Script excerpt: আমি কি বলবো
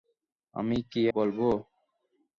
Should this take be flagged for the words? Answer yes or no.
no